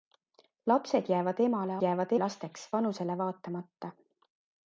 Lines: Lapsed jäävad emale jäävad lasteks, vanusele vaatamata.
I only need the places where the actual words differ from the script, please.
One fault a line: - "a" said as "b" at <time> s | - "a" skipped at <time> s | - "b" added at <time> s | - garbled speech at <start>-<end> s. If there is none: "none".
none